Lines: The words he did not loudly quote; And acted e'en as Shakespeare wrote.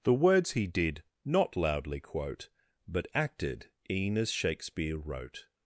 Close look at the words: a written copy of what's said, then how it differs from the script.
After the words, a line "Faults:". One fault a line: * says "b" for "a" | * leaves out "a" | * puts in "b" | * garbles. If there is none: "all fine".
The words he did not loudly quote; But acted e'en as Shakespeare wrote.
Faults:
* says "But" for "And"